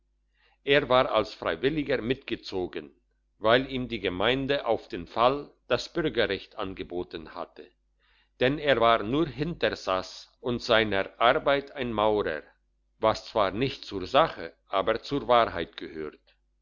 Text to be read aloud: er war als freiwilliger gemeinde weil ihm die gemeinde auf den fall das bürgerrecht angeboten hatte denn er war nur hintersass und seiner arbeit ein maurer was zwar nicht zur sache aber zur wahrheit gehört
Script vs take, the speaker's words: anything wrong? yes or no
yes